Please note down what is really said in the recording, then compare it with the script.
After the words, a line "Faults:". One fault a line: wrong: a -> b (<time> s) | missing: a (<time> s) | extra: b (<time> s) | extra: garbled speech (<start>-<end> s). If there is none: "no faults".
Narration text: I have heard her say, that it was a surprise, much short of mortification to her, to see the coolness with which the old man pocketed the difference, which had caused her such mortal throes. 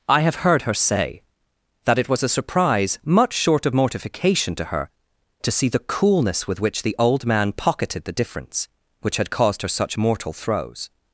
I have heard her say, that it was a surprise, much short of mortification to her, to see the coolness with which the old man pocketed the difference, which had caused her such mortal throes.
Faults:
no faults